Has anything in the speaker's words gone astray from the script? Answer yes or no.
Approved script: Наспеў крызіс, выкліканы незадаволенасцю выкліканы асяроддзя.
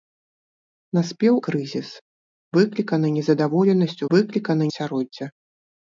no